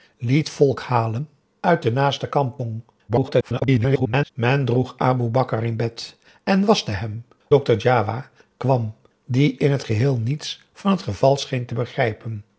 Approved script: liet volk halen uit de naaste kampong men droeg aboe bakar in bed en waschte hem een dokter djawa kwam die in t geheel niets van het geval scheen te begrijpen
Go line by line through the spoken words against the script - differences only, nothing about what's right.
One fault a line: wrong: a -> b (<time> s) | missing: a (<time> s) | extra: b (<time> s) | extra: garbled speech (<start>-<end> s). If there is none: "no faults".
extra: garbled speech (3.1-4.3 s)
missing: een (7.3 s)